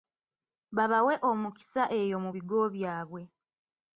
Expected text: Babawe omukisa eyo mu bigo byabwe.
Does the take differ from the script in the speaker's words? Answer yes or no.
no